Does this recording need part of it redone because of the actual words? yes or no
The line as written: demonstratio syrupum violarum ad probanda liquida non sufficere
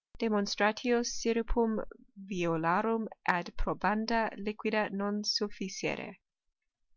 no